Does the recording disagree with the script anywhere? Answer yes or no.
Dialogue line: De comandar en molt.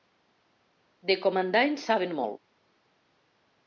yes